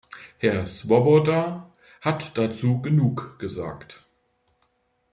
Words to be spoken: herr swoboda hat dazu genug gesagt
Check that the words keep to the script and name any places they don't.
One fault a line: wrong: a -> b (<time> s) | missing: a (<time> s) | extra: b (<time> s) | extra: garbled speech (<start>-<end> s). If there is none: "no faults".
no faults